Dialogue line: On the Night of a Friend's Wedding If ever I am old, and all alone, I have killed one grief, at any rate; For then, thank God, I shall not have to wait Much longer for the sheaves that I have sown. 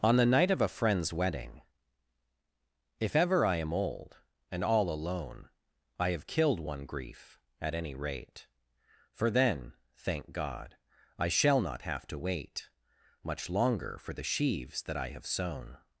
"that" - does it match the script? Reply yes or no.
yes